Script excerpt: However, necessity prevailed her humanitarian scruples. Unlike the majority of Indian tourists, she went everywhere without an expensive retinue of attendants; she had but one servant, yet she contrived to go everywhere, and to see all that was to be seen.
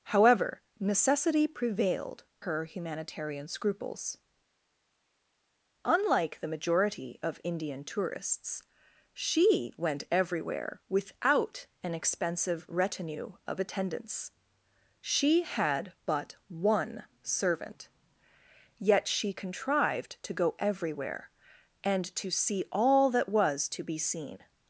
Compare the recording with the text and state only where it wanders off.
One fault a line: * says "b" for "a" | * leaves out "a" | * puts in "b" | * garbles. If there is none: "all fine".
all fine